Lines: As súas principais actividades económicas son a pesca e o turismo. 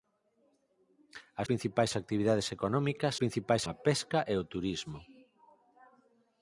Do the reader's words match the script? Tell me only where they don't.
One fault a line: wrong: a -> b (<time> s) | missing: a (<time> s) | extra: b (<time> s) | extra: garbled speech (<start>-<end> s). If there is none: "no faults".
missing: súas (1.5 s)
wrong: son -> principais (3.2 s)